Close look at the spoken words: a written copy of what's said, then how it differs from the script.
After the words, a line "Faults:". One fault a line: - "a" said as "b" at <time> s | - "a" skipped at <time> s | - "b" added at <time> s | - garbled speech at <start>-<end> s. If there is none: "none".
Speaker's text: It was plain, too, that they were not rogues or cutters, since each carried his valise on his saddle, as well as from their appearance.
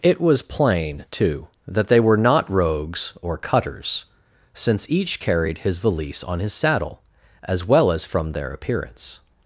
It was plain, too, that they were not rogues or cutters, since each carried his valise on his saddle, as well as from their appearance.
Faults:
none